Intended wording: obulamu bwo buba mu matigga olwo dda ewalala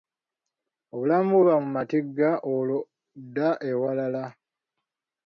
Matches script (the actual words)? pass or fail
pass